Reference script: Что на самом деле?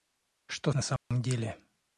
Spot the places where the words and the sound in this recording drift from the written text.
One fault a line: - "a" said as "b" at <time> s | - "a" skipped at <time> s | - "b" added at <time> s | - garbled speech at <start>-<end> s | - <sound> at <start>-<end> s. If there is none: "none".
- dropout at 1.0-1.1 s